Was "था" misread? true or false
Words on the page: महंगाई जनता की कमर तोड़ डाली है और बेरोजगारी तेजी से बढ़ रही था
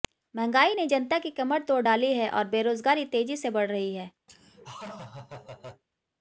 true